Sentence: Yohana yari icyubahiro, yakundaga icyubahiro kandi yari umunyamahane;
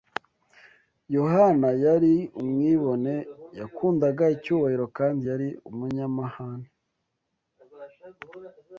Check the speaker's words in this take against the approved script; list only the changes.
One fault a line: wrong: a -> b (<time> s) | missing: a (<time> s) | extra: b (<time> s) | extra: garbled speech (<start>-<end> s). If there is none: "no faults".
wrong: icyubahiro -> umwibone (2.4 s)